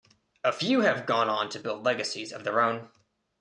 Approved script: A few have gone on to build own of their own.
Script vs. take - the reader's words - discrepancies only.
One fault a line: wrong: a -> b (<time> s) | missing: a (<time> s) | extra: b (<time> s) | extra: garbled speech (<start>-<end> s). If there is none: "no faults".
wrong: own -> legacies (1.8 s)